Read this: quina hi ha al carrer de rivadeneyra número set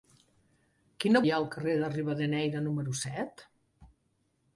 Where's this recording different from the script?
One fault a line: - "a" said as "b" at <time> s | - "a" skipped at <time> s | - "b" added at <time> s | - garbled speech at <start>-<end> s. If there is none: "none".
none